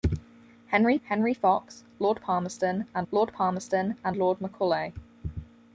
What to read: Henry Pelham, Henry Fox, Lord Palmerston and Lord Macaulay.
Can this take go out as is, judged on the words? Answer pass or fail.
fail